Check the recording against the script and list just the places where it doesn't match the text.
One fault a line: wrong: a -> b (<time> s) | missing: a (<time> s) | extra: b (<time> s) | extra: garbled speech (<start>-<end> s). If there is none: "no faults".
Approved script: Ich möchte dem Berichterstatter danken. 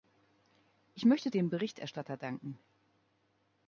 no faults